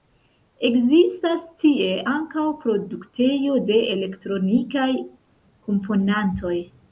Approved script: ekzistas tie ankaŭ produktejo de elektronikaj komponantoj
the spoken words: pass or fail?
pass